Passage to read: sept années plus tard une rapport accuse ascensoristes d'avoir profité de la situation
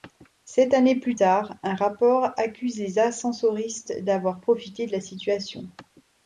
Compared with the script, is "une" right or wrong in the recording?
wrong